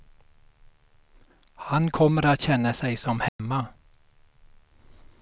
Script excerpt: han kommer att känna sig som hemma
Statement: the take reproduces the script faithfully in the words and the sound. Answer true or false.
false